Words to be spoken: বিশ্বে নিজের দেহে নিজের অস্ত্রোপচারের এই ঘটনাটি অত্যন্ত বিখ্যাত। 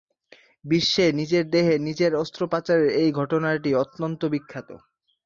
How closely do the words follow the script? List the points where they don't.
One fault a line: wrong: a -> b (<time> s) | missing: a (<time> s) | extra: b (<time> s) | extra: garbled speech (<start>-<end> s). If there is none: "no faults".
no faults